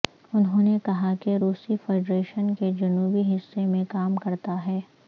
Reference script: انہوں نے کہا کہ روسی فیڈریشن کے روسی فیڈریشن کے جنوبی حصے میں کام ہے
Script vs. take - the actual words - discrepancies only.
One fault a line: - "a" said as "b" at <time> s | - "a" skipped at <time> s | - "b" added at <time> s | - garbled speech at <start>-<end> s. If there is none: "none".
- "روسی فیڈریشن کے" skipped at 2.7 s
- "کرتا" added at 4.2 s